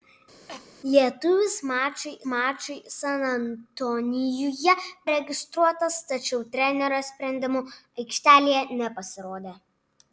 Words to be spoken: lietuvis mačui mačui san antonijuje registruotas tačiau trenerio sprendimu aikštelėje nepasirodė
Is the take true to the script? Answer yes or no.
yes